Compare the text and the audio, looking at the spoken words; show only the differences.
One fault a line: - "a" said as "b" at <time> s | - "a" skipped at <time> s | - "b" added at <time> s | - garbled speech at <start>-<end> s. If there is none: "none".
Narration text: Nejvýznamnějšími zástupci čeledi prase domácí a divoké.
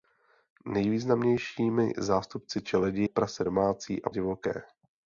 none